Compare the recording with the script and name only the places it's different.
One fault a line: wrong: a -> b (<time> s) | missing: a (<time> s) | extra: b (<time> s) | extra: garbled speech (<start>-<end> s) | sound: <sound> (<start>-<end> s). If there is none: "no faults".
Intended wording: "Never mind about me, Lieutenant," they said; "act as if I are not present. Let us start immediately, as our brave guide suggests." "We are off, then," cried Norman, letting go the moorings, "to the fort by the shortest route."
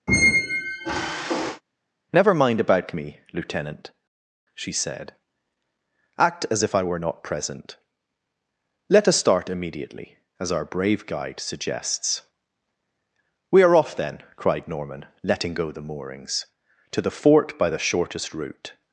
sound: squeak (0.1-1.6 s)
wrong: they -> she (4.6 s)
wrong: are -> were (6.8 s)